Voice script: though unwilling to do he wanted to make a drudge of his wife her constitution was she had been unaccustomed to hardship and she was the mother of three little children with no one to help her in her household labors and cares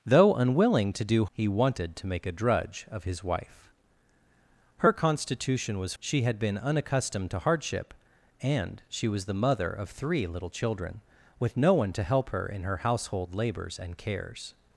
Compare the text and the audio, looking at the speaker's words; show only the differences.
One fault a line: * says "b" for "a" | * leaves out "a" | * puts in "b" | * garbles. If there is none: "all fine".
all fine